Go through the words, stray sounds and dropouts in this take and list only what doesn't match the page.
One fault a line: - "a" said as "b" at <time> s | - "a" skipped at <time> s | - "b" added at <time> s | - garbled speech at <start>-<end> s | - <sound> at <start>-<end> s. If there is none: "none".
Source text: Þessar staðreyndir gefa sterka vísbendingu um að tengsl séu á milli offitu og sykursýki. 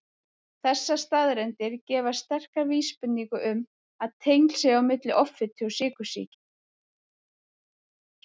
none